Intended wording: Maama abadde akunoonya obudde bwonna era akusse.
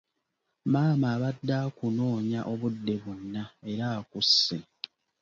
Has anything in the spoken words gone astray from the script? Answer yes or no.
no